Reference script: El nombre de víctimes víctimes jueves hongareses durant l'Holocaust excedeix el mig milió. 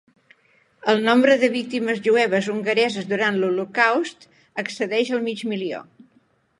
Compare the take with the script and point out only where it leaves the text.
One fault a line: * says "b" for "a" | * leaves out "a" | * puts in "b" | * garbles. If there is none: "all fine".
* leaves out "víctimes"